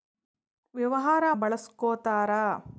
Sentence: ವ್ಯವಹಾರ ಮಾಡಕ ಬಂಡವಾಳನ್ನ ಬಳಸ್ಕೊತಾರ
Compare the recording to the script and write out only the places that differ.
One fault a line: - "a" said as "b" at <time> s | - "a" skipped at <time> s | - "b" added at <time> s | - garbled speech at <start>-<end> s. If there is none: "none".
- "ಮಾಡಕ ಬಂಡವಾಳನ್ನ" skipped at 1.2 s